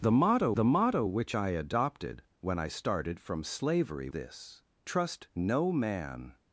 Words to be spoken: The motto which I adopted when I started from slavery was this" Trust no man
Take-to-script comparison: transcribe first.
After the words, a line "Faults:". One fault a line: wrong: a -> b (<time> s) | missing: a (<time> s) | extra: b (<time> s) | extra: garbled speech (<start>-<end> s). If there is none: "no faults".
The motto the motto which I adopted when I started from slavery this" Trust no man
Faults:
extra: the motto (0.5 s)
missing: was (4.1 s)